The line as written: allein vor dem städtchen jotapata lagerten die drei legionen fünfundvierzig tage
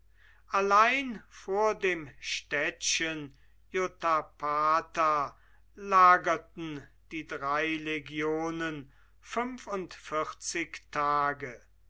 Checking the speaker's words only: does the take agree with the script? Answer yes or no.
yes